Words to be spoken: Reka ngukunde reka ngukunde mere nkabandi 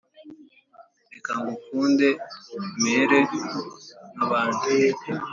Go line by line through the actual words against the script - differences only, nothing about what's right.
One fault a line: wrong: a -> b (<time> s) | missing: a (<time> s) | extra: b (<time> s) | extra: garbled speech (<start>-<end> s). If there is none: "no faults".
missing: reka ngukunde (2.1 s)